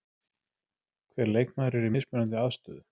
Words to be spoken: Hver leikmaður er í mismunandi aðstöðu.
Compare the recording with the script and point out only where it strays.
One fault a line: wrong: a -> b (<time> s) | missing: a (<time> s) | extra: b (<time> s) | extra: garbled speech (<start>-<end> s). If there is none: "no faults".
no faults